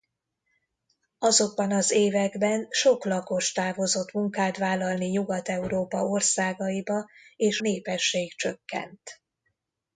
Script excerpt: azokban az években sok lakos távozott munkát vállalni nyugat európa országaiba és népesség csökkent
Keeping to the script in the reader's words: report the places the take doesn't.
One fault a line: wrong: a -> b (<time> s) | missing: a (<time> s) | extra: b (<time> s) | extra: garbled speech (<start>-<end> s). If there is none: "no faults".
no faults